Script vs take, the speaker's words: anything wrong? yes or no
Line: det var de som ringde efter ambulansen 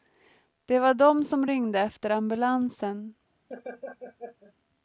no